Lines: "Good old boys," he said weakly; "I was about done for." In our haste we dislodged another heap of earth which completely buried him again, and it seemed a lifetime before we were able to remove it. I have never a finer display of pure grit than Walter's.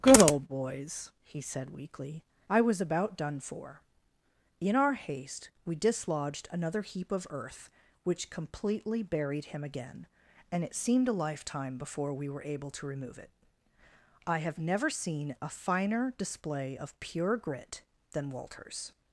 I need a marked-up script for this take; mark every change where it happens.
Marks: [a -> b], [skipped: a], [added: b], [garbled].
"Good old boys," he said weakly; "I was about done for." In our haste we dislodged another heap of earth which completely buried him again, and it seemed a lifetime before we were able to remove it. I have never [added: seen] a finer display of pure grit than Walter's.